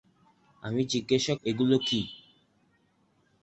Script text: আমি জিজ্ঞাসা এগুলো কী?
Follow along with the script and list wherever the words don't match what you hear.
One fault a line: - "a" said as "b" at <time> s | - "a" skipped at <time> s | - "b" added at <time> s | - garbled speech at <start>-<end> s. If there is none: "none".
none